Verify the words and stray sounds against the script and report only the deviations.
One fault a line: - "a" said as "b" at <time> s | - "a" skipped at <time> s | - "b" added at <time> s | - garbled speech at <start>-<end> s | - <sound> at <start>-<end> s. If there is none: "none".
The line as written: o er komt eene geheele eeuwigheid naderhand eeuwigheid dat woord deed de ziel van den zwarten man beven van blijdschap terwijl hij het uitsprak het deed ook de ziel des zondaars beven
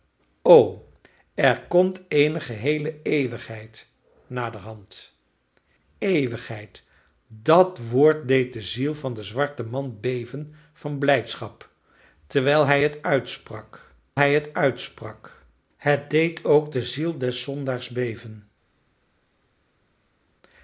- "hij het uitsprak" added at 14.2 s